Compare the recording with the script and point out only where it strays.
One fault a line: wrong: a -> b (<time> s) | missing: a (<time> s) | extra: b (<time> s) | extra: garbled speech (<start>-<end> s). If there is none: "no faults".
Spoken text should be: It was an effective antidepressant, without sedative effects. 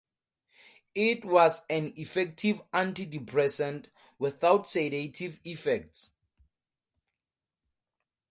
no faults